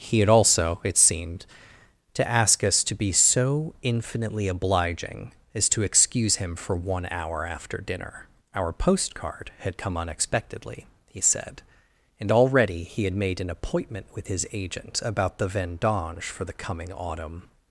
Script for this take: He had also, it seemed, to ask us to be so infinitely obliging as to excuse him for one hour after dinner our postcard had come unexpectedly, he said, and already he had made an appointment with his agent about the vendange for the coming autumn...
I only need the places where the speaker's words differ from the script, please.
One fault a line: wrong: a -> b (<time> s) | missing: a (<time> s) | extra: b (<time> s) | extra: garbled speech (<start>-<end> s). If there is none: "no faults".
no faults